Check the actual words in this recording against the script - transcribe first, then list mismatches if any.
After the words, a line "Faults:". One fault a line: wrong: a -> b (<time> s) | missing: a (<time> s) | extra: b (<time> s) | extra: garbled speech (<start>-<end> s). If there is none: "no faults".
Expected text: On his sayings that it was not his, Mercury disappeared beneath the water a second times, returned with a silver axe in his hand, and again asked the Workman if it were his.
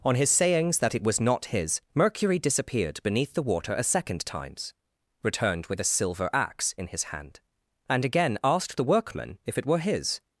On his sayings that it was not his, Mercury disappeared beneath the water a second times, returned with a silver axe in his hand, and again asked the Workman if it were his.
Faults:
no faults